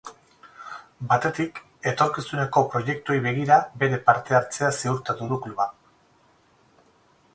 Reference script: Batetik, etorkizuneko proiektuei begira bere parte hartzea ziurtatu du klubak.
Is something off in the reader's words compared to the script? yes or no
no